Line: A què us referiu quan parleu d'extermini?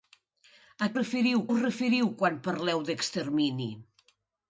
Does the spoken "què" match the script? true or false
false